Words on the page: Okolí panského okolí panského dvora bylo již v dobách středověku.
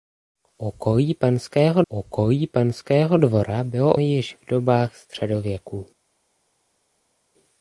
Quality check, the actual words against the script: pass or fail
pass